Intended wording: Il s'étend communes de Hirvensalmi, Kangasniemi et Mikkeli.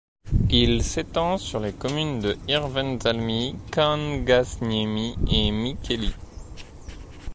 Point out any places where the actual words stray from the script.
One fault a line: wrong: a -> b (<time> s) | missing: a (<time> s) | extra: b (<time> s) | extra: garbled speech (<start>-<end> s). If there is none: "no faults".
extra: sur les (1.4 s)